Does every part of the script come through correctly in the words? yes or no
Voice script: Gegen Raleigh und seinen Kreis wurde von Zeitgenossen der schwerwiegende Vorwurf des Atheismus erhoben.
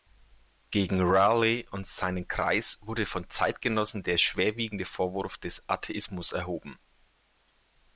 yes